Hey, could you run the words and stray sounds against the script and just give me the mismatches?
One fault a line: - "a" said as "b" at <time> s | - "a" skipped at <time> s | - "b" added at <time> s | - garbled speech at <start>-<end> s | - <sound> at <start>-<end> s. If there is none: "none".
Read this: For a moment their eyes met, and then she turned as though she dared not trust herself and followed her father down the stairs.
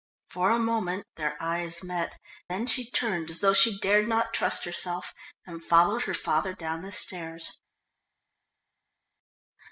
- "and" skipped at 2.1 s